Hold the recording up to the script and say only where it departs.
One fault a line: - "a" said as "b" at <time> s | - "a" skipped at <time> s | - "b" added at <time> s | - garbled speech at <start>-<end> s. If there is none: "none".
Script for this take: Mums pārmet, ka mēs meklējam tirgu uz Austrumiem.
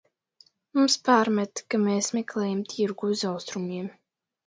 none